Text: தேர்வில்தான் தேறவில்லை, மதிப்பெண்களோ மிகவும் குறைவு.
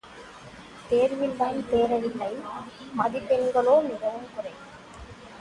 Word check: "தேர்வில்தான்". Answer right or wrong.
right